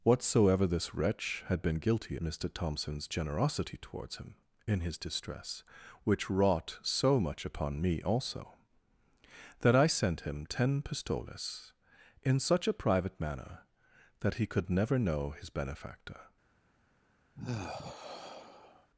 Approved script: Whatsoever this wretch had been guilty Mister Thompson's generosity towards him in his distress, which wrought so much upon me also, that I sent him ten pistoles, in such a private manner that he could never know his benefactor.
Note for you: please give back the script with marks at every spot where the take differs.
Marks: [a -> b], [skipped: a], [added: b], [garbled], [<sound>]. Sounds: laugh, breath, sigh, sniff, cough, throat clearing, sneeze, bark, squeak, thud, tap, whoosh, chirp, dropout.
Whatsoever this wretch had been guilty Mister Thompson's generosity towards him in his distress, which wrought so much upon me also, that I sent him ten pistoles, in such a private manner that he could never know his benefactor. [sigh]